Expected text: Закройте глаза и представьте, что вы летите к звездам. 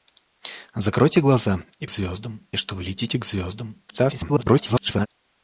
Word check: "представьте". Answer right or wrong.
wrong